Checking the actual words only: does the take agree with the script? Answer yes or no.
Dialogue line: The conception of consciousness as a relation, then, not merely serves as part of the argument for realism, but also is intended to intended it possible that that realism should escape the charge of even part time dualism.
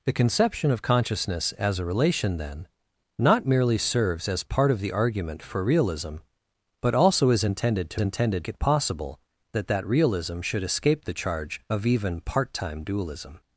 yes